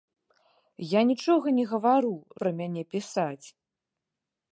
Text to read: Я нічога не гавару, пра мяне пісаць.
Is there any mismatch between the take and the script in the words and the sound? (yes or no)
no